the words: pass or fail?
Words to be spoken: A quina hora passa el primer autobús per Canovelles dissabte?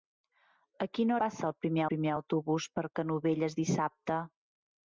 fail